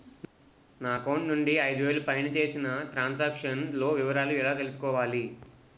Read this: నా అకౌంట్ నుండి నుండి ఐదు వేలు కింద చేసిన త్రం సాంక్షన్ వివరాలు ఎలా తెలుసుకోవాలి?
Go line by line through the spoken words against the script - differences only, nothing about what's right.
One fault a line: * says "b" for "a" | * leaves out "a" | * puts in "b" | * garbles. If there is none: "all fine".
* leaves out "నుండి"
* says "పైన" for "కింద"
* puts in "లో"